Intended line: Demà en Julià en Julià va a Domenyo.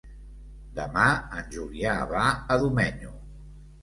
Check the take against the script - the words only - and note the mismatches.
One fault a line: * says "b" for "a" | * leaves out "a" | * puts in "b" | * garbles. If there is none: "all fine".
* leaves out "en Julià"